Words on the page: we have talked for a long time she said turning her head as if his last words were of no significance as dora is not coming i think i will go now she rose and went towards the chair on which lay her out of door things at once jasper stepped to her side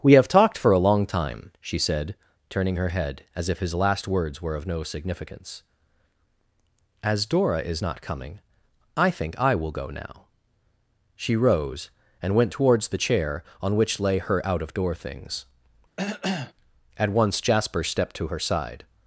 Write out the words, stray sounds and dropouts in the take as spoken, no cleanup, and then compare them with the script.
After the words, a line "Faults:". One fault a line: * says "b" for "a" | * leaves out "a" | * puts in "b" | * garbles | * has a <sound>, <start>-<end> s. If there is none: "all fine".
we have talked for a long time she said turning her head as if his last words were of no significance as dora is not coming i think i will go now she rose and went towards the chair on which lay her out of door things at once jasper stepped to her side
Faults:
* has a cough, 16.0-16.5 s